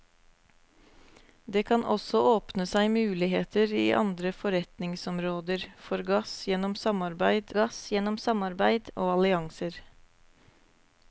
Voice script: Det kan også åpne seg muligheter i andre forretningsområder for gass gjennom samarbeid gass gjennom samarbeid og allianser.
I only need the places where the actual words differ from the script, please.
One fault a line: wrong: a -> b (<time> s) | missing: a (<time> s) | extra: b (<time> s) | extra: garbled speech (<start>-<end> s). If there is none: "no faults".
no faults